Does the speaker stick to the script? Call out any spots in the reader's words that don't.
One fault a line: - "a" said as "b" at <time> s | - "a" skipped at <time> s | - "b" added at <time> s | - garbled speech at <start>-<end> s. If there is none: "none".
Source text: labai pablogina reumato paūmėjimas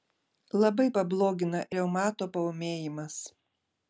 none